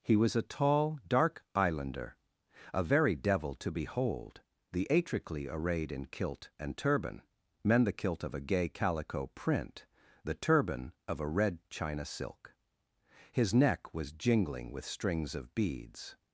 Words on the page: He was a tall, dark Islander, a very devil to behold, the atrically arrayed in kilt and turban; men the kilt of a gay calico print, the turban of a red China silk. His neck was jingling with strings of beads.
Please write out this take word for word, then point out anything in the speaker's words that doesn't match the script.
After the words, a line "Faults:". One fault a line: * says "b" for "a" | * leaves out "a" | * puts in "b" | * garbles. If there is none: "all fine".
He was a tall, dark Islander, a very devil to behold, the atrically arrayed in kilt and turban; men the kilt of a gay calico print, the turban of a red China silk. His neck was jingling with strings of beads.
Faults:
all fine